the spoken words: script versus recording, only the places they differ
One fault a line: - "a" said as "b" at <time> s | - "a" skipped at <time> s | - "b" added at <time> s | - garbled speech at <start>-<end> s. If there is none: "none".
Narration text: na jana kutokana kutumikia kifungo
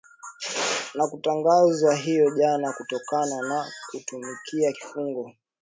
- "kutangazwa hiyo" added at 1.1 s
- "na" added at 3.5 s